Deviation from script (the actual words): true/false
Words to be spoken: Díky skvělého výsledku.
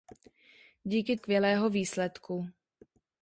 false